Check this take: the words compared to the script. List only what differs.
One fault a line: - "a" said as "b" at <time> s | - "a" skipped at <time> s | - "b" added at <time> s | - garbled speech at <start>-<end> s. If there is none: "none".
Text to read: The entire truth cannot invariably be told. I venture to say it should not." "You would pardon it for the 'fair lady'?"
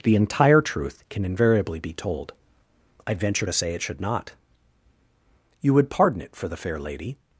- "cannot" said as "can" at 1.1 s